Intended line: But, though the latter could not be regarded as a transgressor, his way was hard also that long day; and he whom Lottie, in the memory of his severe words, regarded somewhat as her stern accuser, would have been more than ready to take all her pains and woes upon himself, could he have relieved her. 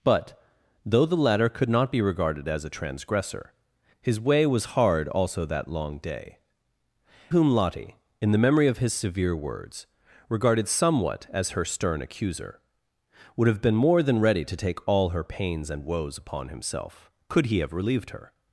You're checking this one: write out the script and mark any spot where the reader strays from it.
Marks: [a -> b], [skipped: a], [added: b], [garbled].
But, though the latter could not be regarded as a transgressor, his way was hard also that long day; [skipped: and he] whom Lottie, in the memory of his severe words, regarded somewhat as her stern accuser, would have been more than ready to take all her pains and woes upon himself, could he have relieved her.